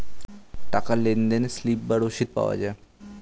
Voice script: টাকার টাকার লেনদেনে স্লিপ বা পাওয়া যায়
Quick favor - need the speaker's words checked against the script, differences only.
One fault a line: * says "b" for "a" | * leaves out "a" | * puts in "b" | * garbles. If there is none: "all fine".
* leaves out "টাকার"
* puts in "রসিদ"